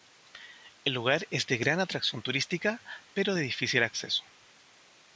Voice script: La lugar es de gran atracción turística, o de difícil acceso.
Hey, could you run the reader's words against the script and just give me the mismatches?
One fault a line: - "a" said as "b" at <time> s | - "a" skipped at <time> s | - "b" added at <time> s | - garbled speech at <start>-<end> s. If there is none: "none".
- "La" said as "El" at 0.8 s
- "o" said as "pero" at 3.1 s